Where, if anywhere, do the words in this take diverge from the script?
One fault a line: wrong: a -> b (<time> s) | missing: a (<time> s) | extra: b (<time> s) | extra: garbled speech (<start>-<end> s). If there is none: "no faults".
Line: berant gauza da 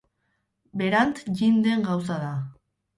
extra: jin den (1.4 s)